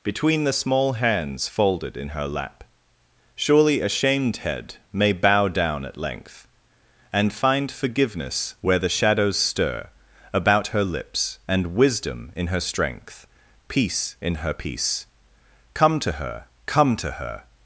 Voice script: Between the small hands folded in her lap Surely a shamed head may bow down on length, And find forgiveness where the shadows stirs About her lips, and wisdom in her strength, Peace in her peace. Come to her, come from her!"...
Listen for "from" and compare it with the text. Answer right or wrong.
wrong